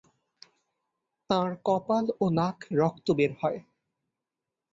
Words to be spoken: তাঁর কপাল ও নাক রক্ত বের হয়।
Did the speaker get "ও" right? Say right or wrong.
right